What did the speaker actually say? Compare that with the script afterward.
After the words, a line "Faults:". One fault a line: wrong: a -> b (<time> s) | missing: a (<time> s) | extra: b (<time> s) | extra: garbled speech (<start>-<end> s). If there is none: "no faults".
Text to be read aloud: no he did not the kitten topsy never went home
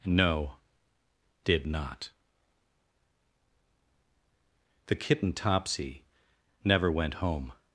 no did not the kitten topsy never went home
Faults:
missing: he (0.5 s)